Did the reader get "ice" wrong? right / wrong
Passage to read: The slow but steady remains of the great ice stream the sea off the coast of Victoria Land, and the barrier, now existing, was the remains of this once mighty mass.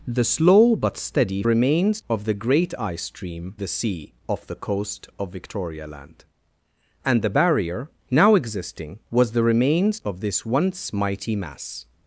right